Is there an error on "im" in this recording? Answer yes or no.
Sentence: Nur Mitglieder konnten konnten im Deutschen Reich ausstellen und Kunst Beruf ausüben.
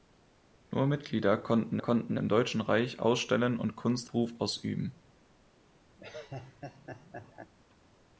no